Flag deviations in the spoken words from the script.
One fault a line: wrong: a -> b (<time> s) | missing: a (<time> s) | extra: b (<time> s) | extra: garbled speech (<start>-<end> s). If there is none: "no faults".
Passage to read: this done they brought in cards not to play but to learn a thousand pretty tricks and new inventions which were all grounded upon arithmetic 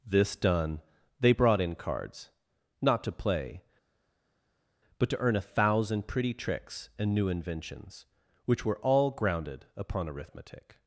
wrong: learn -> earn (5.2 s)